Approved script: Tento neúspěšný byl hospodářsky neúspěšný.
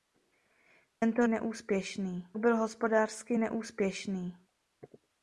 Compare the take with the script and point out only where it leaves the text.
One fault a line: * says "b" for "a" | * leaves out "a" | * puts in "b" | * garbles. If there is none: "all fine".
all fine